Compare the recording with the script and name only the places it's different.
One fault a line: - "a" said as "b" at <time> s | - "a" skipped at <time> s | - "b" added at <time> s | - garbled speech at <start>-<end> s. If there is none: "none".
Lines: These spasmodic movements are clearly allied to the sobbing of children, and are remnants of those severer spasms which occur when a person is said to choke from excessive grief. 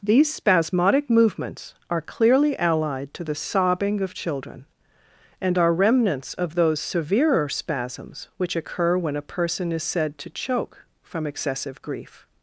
none